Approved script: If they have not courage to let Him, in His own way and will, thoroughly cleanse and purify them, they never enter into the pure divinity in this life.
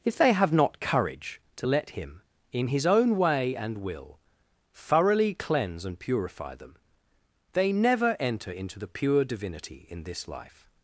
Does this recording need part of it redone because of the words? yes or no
no